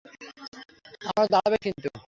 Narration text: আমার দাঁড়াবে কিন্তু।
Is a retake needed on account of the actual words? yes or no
no